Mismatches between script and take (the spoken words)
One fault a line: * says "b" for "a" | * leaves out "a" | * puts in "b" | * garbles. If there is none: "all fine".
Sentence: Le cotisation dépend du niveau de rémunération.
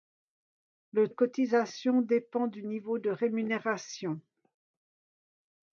all fine